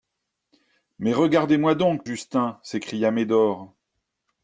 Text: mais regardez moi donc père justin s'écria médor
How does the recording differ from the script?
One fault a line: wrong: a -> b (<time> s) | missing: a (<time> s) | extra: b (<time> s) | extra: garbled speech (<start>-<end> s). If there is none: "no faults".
missing: père (2.1 s)